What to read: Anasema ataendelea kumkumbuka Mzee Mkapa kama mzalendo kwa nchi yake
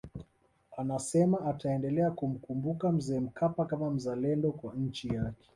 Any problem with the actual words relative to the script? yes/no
no